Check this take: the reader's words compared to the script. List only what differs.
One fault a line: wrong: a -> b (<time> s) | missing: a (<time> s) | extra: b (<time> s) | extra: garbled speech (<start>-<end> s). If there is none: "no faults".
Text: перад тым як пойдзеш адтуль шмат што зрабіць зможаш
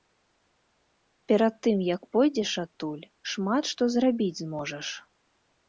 no faults